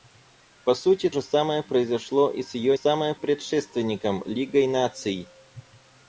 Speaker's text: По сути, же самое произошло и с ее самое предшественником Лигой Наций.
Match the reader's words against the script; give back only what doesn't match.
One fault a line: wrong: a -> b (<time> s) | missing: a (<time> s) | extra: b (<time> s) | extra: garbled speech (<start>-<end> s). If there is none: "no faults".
no faults